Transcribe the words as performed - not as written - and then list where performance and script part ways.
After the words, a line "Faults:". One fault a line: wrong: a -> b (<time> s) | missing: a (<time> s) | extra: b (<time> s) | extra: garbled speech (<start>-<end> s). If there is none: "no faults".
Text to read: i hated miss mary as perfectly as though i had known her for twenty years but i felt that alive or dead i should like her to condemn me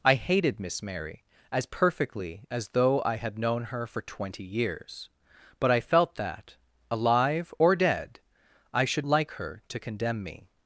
i hated miss mary as perfectly as though i had known her for twenty years but i felt that alive or dead i should like her to condemn me
Faults:
no faults